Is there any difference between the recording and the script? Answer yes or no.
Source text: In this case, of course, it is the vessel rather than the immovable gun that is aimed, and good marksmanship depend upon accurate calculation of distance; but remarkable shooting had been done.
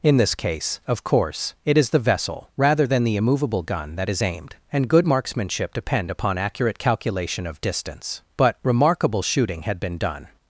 no